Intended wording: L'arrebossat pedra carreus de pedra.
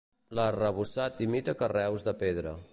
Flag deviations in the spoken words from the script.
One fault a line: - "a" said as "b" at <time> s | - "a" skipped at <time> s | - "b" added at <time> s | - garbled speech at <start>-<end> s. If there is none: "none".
- "pedra" said as "imita" at 1.3 s